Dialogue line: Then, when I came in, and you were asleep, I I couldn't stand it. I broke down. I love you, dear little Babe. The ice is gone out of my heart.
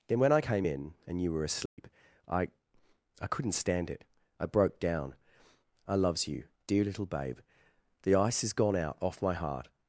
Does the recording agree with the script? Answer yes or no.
no